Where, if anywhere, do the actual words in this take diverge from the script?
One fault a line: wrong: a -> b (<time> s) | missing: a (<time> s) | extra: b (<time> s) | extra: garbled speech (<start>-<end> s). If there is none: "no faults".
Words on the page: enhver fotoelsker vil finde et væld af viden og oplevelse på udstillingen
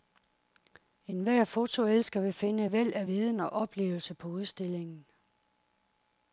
no faults